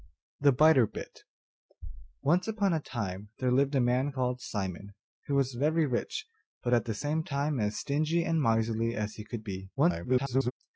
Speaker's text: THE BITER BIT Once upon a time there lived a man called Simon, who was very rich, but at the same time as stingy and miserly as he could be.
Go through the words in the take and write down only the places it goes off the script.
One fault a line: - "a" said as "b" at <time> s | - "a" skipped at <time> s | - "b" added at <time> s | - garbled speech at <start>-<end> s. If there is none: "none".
- garbled speech at 9.8-10.5 s